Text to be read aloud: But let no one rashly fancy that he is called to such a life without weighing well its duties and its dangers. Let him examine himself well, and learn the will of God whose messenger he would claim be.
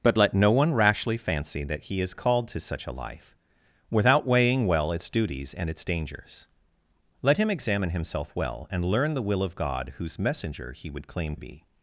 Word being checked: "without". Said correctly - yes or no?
yes